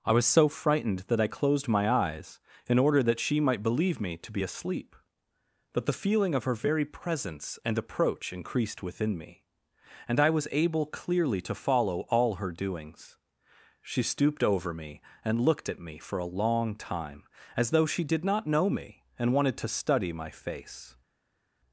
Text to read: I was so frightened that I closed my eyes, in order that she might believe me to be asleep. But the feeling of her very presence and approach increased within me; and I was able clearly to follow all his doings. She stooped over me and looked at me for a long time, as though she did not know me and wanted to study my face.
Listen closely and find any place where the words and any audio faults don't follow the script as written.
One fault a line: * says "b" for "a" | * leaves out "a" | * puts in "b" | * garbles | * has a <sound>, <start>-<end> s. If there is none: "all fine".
* says "her" for "his"